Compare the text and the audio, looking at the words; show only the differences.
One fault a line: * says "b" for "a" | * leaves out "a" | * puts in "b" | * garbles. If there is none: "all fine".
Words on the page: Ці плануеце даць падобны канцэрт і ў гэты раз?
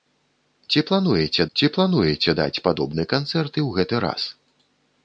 * puts in "ці плануеце"